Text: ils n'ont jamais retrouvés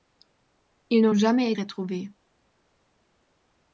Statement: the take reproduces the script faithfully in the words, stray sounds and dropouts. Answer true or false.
true